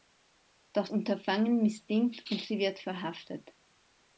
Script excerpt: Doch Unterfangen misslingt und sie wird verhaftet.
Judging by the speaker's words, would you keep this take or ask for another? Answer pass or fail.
pass